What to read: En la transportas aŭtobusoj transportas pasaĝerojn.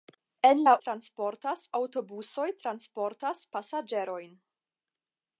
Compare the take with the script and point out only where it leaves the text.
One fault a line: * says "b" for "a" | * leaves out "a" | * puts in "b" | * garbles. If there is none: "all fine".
all fine